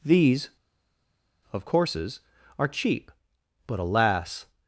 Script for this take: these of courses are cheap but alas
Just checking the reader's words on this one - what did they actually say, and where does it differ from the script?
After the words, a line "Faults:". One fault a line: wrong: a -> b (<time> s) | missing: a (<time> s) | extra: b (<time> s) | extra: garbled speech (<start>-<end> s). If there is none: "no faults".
these of courses are cheap but alas
Faults:
no faults